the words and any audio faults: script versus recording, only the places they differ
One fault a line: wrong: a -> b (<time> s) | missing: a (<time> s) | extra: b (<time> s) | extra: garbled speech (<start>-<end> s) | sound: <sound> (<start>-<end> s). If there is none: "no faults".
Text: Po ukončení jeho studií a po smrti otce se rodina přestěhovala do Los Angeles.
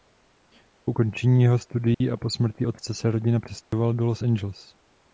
sound: dropout (1.9-2.0 s)
sound: dropout (3.6-3.7 s)